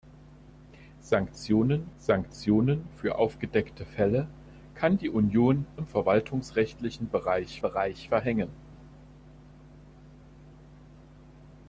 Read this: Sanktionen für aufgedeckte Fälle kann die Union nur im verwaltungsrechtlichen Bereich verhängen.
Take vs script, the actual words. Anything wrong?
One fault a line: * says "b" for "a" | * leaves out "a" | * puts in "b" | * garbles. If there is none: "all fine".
* puts in "sanktionen"
* leaves out "nur"
* puts in "Bereich"